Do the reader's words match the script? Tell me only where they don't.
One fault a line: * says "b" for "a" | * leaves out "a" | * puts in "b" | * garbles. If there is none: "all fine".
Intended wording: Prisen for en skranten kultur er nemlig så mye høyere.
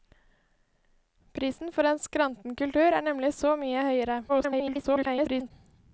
* garbles